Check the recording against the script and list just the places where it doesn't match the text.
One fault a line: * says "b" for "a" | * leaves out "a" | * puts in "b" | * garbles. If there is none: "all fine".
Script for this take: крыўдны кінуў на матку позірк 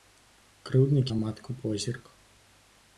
* leaves out "кінуў"